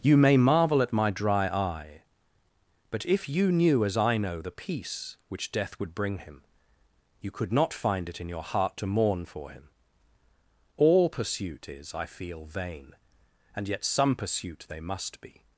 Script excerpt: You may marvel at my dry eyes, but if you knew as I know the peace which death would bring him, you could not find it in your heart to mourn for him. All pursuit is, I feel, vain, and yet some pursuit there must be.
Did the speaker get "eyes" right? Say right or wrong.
wrong